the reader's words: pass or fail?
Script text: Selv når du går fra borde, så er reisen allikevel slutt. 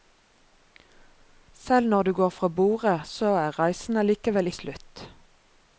pass